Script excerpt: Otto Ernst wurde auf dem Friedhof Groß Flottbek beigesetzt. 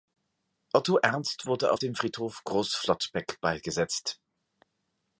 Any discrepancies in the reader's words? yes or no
no